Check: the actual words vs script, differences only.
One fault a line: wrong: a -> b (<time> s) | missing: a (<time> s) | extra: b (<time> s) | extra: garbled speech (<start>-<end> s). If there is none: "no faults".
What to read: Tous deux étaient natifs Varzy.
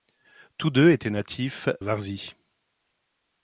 no faults